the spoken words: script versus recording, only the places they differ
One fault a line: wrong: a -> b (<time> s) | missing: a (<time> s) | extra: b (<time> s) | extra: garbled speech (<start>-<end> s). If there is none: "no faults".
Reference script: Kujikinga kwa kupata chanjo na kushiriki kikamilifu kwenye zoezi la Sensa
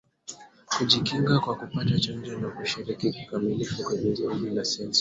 no faults